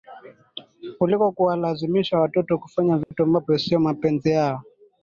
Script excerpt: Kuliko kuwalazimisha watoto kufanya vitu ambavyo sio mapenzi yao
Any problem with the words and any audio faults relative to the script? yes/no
yes